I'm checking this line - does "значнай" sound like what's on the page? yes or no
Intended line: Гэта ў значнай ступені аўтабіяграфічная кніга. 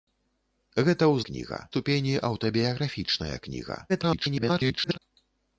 no